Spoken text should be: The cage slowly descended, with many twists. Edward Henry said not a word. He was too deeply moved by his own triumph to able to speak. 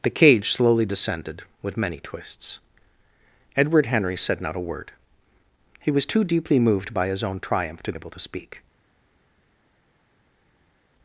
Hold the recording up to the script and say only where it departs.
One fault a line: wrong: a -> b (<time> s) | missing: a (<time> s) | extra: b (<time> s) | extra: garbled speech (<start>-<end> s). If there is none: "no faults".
no faults